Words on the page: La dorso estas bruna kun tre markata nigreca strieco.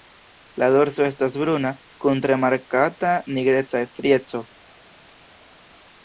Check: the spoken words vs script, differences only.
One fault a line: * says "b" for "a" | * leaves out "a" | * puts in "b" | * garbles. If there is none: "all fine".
all fine